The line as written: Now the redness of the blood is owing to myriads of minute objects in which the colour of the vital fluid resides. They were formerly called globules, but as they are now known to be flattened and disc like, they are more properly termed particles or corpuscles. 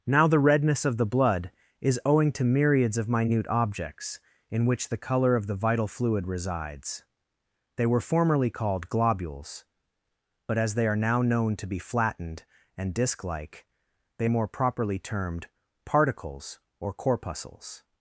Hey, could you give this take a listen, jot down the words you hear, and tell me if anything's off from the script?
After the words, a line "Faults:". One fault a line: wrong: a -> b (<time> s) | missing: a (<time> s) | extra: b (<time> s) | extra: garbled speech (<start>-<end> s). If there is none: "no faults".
Now the redness of the blood is owing to myriads of minute objects in which the colour of the vital fluid resides. They were formerly called globules, but as they are now known to be flattened and disc like, they more properly termed particles or corpuscles.
Faults:
missing: are (14.3 s)